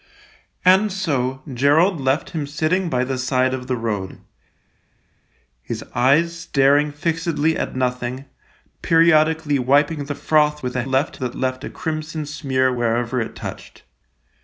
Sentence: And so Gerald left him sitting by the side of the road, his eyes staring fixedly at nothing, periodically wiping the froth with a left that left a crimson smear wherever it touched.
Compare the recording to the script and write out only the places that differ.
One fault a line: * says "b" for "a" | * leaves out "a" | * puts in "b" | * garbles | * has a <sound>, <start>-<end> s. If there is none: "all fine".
all fine